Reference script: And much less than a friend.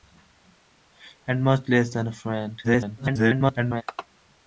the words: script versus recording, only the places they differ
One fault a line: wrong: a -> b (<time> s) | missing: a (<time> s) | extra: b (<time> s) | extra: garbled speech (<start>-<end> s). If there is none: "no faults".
extra: garbled speech (2.6-3.8 s)